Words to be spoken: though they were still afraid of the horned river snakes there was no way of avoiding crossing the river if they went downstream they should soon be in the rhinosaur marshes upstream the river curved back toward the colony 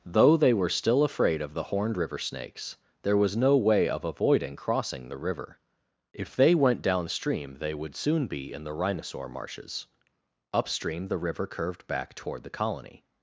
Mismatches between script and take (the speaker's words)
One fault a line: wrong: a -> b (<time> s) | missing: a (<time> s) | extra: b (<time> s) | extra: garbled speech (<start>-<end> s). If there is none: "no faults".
wrong: should -> would (7.7 s)